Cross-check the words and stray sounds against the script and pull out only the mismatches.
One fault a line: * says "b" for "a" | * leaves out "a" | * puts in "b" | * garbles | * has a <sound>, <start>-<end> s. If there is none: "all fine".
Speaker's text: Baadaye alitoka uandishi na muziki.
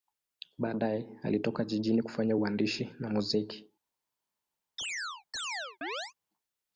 * puts in "jijini kufanya"
* has a chirp, 4.8-6.1 s